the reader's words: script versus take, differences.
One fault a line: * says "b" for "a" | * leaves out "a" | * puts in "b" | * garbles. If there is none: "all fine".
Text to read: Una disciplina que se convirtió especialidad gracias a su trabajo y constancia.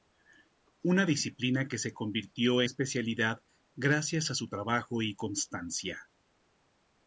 all fine